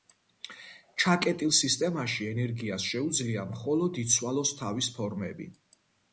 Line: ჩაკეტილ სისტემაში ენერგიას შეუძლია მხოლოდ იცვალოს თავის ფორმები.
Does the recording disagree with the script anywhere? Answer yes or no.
no